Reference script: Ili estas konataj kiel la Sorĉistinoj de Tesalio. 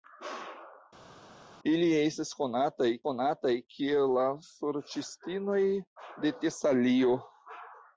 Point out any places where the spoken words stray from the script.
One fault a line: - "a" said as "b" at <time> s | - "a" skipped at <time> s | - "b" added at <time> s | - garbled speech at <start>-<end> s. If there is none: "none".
- "konataj" added at 3.1 s